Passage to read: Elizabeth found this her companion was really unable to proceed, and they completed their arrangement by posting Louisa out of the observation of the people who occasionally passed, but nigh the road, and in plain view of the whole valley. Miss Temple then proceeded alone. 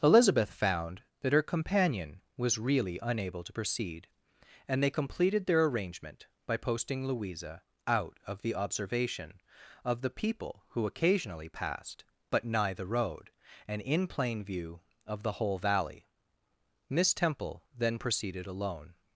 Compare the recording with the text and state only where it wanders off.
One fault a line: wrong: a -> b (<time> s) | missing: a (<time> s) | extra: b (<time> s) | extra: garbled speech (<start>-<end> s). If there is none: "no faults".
wrong: this -> that (1.2 s)